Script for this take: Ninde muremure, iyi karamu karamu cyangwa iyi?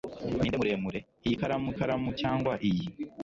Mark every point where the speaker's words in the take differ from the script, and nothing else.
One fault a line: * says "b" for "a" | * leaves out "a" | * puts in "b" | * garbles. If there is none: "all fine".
all fine